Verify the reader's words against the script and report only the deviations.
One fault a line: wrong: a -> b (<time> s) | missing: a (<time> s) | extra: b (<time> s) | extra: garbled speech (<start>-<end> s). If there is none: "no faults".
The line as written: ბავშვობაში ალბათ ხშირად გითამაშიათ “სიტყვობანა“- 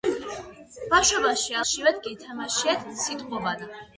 missing: ალბათ (1.6 s)